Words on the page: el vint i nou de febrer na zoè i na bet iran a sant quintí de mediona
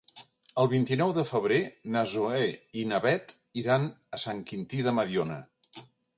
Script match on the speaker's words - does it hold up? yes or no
yes